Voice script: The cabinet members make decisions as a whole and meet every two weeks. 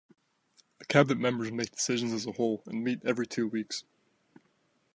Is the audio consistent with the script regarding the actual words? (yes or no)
yes